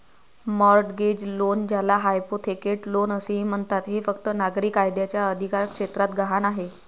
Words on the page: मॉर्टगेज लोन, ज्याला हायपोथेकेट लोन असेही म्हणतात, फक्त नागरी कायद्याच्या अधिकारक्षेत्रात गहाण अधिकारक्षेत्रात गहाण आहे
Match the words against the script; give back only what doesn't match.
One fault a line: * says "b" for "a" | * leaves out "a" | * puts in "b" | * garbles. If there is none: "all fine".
* puts in "हे"
* leaves out "अधिकारक्षेत्रात गहाण"